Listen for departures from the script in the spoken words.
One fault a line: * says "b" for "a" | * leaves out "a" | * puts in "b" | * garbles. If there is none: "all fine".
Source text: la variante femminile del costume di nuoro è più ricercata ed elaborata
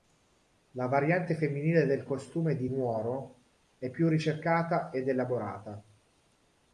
all fine